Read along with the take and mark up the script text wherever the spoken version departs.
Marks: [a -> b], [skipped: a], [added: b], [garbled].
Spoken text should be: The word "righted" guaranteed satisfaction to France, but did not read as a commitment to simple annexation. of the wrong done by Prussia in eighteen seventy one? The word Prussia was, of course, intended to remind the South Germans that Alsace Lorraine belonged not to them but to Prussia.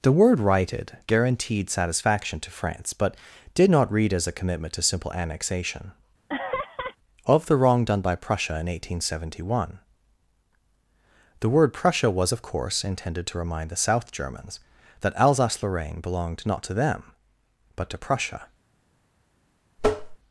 The word "righted" guaranteed satisfaction to France, but did not read as a commitment to simple annexation. of the wrong done by Prussia in eighteen seventy one? The word Prussia was, of course, intended to remind the South Germans that Alsace Lorraine belonged not to them but to Prussia.